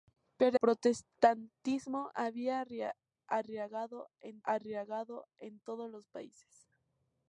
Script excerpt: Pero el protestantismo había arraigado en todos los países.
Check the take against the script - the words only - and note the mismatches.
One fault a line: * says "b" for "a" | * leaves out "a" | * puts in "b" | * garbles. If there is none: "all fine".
* leaves out "el"
* puts in "arraigado en"